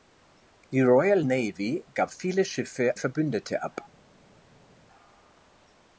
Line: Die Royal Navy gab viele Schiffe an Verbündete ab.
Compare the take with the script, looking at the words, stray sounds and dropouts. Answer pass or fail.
fail